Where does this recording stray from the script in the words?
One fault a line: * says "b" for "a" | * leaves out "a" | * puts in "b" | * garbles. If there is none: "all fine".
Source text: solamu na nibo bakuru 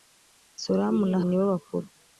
all fine